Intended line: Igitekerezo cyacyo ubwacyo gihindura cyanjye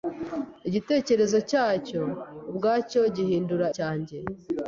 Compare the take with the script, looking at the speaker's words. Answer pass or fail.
pass